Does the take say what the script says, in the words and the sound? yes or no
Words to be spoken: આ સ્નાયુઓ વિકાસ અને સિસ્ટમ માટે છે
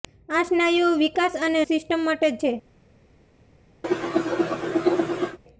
no